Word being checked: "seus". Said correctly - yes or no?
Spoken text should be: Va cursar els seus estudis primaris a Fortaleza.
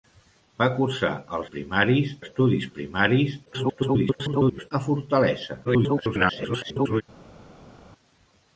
no